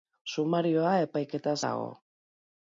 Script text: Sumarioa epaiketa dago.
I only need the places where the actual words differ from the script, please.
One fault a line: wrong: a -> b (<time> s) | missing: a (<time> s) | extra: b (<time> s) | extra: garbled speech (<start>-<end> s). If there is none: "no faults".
no faults